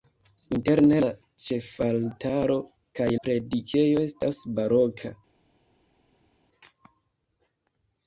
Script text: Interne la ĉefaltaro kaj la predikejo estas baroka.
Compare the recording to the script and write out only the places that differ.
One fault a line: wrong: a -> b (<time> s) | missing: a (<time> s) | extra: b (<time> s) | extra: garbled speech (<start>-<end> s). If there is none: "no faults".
missing: la (3.1 s)